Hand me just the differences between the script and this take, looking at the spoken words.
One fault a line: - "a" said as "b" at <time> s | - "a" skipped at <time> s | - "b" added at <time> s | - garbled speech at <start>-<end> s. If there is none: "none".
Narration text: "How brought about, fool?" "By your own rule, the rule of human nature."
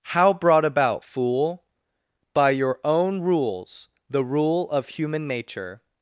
- "rule" said as "rules" at 3.2 s